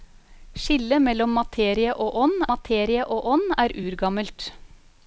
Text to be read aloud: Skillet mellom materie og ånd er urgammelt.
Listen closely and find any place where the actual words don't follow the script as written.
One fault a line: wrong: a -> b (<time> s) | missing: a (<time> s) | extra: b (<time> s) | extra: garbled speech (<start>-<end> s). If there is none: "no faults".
extra: materie og ånd (2.5 s)